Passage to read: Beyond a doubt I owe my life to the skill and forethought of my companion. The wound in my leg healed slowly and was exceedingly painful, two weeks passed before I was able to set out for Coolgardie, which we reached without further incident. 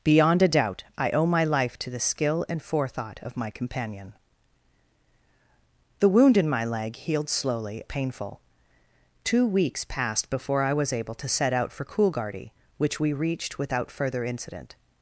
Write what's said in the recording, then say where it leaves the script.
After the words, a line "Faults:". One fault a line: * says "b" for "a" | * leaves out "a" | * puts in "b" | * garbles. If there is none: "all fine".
Beyond a doubt I owe my life to the skill and forethought of my companion. The wound in my leg healed slowly painful, two weeks passed before I was able to set out for Coolgardie, which we reached without further incident.
Faults:
* leaves out "and was exceedingly"